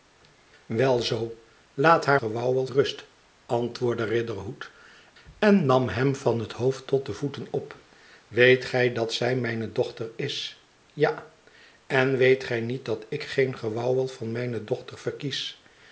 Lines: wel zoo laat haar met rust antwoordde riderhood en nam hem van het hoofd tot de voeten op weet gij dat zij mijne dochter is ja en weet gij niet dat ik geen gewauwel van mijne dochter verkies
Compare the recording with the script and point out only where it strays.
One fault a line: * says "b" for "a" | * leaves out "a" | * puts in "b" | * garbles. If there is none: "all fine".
* says "gewauwel" for "met"